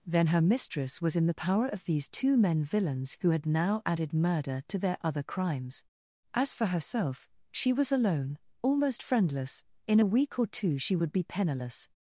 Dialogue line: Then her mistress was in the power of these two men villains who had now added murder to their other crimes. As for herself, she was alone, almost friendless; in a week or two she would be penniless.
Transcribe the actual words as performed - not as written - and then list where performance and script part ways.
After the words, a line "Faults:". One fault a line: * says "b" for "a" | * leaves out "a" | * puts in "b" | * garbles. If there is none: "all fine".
Then her mistress was in the power of these two men villains who had now added murder to their other crimes. As for herself, she was alone, almost friendless; in a week or two she would be penniless.
Faults:
all fine